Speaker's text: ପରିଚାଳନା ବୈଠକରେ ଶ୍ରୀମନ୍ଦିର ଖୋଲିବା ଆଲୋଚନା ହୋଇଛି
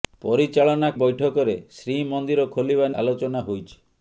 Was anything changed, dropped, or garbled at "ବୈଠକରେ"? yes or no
no